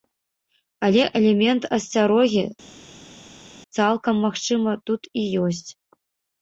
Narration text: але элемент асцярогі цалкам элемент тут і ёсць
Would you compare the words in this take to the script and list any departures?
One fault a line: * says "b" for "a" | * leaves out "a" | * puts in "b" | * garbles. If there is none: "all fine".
* says "магчыма" for "элемент"